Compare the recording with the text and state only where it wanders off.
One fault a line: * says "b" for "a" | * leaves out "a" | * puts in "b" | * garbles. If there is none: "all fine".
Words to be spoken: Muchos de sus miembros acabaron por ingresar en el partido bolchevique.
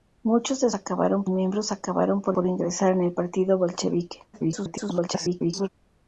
* says "acabaron" for "sus"
* puts in "por"
* garbles